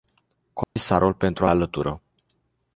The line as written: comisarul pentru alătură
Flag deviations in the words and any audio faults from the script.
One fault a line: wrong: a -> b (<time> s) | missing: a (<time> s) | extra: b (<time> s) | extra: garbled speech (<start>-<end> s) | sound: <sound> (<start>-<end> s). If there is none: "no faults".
sound: dropout (0.6-0.8 s)